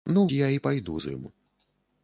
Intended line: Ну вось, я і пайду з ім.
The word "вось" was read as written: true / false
false